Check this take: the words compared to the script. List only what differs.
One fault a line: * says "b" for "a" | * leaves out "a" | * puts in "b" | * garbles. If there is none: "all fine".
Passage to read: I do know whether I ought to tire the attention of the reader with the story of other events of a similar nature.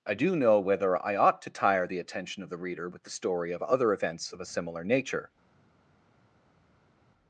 all fine